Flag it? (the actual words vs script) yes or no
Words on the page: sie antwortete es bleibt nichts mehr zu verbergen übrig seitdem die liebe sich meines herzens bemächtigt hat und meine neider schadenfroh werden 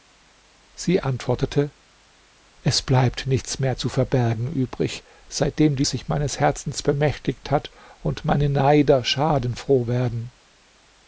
yes